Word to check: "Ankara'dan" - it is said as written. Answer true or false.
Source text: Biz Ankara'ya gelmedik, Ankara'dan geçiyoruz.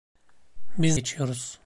false